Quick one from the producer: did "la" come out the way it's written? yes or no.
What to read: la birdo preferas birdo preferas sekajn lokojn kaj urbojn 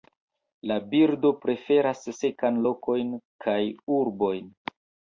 yes